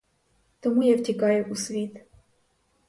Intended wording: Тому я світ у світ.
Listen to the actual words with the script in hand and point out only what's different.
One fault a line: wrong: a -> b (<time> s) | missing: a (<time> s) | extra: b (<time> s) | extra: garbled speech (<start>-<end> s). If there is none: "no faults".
wrong: світ -> втікаю (1.0 s)